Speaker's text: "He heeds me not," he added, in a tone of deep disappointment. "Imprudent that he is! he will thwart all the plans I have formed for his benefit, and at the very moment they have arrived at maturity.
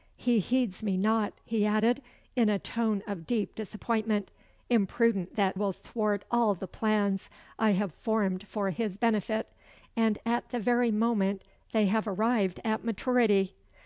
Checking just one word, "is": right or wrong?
wrong